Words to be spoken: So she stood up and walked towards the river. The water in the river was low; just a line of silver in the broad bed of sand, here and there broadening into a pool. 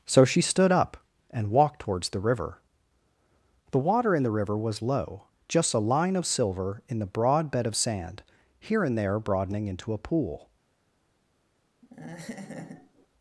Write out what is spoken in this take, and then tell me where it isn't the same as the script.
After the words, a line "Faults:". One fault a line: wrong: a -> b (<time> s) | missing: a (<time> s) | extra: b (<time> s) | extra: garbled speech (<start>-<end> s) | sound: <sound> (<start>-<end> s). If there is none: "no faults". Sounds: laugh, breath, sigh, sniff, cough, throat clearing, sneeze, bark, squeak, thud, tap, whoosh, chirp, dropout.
So she stood up and walked towards the river. The water in the river was low; just a line of silver in the broad bed of sand, here and there broadening into a pool.
Faults:
sound: laugh (11.8-13.1 s)